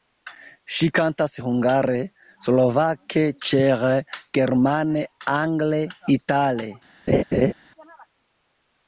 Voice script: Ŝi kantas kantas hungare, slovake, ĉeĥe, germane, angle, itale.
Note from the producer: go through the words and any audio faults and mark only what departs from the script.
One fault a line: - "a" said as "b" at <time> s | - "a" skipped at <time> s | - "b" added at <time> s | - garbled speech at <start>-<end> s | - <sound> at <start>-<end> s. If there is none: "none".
- "kantas" skipped at 1.4 s
- laugh at 7.1-7.5 s